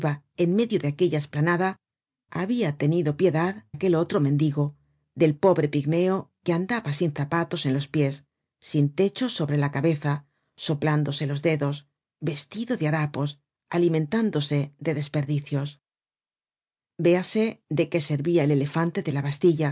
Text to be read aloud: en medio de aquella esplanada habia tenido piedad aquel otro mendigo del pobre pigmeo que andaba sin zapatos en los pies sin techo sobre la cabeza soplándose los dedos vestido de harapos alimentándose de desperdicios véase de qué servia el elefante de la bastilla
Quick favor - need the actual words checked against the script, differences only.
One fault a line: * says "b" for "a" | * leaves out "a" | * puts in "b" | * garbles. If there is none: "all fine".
all fine